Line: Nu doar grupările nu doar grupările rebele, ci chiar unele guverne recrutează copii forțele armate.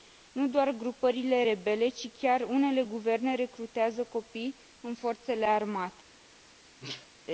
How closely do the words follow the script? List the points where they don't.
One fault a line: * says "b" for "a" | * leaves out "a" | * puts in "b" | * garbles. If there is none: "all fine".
* leaves out "nu doar grupările"
* puts in "în"